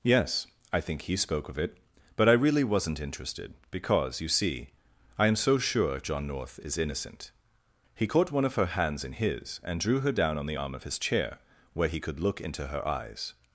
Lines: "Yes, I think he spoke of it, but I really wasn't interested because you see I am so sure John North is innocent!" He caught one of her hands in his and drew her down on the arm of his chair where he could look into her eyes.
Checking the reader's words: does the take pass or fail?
pass